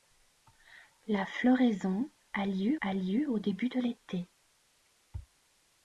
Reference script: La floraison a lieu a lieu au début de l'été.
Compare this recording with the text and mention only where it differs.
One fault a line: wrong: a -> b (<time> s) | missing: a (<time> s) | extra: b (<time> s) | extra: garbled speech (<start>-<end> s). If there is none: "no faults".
no faults